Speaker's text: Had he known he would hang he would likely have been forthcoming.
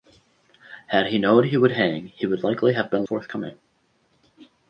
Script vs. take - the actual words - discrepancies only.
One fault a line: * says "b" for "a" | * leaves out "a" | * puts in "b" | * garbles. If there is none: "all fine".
all fine